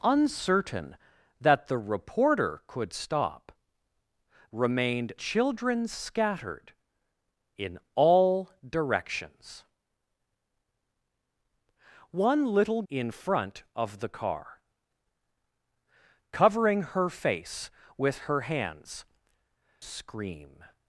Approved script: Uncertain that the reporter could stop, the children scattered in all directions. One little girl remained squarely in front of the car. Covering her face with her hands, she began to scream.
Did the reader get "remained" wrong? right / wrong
wrong